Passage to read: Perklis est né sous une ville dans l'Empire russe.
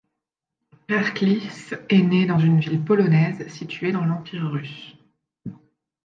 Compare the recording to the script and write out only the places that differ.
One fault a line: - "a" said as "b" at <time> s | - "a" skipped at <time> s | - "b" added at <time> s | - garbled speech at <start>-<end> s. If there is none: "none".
- "sous" said as "dans" at 2.3 s
- "polonaise située" added at 2.8 s